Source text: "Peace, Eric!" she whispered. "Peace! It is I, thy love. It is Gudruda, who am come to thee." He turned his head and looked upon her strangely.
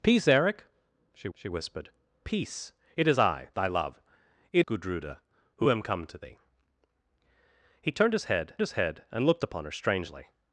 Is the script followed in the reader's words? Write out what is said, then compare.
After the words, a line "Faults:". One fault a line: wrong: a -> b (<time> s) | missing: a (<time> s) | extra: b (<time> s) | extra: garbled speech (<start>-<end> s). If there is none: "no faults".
"Peace, Eric!" she she whispered. "Peace! It is I, thy love. It Gudruda, who am come to thee." He turned his head his head and looked upon her strangely.
Faults:
extra: she (1.3 s)
missing: is (4.7 s)
extra: his head (8.6 s)